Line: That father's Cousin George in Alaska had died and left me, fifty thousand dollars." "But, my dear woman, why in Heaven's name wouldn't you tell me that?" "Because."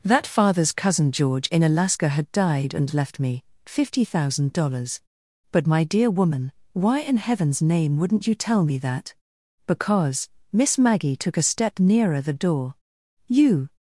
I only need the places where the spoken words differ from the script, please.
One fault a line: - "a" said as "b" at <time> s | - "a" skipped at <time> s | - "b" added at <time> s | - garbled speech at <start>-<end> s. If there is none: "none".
- "Miss Maggie took a step nearer the door You" added at 10.5 s